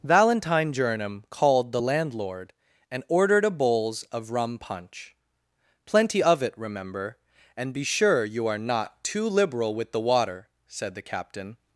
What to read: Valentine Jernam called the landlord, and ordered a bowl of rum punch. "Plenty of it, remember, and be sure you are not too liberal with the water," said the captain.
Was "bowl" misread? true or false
true